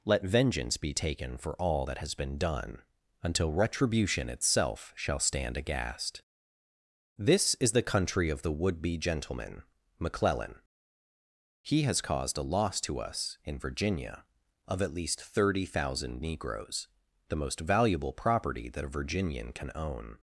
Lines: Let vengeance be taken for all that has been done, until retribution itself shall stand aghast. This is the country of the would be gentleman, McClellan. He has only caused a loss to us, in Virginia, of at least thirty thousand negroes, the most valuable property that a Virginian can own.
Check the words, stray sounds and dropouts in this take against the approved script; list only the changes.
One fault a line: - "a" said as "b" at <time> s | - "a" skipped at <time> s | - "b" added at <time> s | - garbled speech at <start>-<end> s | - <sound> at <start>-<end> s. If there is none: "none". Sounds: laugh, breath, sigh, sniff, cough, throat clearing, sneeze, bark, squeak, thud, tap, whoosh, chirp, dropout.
- "only" skipped at 12.0 s